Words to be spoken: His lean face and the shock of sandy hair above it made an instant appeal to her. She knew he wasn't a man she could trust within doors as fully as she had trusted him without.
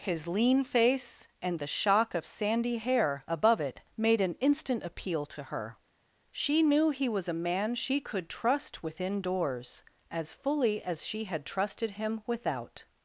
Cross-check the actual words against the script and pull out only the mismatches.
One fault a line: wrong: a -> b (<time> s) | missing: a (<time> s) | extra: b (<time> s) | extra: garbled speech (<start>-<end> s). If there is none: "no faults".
wrong: wasn't -> was (7.1 s)